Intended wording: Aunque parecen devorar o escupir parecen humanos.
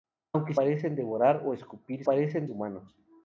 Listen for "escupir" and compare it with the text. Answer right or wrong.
right